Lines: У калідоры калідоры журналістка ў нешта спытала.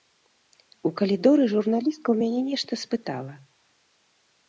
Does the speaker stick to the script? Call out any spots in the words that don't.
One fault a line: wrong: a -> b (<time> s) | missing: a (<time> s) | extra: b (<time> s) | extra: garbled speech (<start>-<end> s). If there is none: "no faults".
missing: калідоры (1.4 s)
extra: мяне (2.2 s)